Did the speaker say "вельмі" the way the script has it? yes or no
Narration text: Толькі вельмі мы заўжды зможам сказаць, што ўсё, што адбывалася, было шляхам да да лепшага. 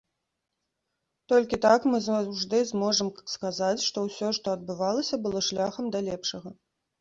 no